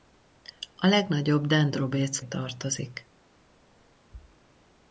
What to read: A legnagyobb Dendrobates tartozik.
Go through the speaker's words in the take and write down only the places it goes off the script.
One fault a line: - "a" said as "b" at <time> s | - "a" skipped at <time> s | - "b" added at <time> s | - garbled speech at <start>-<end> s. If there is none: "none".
none